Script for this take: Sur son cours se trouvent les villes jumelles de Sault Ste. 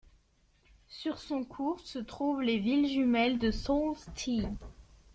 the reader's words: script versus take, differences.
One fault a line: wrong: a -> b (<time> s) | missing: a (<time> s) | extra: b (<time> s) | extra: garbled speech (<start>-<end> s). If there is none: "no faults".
no faults